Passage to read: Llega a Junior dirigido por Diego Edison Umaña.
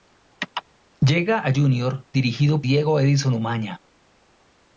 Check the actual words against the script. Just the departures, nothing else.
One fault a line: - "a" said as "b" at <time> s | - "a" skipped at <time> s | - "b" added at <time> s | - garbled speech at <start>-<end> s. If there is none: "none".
- "por" skipped at 2.6 s